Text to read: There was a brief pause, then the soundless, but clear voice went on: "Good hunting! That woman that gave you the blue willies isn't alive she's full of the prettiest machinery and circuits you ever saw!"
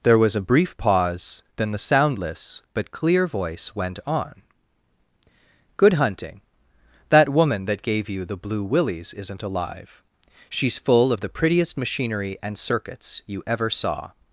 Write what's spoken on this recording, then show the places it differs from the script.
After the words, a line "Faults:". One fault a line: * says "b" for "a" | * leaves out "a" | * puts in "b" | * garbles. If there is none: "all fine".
There was a brief pause, then the soundless, but clear voice went on: "Good hunting! That woman that gave you the blue willies isn't alive she's full of the prettiest machinery and circuits you ever saw!"
Faults:
all fine